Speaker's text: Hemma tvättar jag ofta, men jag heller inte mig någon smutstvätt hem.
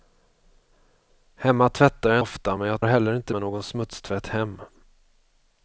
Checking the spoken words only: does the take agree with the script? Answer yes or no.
yes